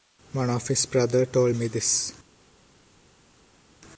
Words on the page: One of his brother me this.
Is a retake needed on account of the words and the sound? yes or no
yes